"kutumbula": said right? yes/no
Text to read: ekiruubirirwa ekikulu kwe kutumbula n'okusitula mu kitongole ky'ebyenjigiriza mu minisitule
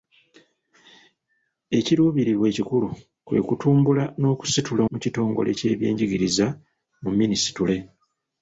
yes